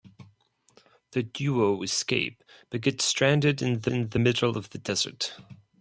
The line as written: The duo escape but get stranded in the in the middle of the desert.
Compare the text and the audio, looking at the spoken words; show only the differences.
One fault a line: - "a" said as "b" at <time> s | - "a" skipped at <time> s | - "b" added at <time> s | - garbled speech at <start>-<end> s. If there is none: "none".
none